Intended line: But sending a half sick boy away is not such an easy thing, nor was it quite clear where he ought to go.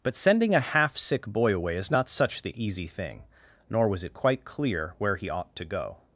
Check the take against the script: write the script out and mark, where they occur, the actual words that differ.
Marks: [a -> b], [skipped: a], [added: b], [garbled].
But sending a half sick boy away is not such [an -> the] easy thing, nor was it quite clear where he ought to go.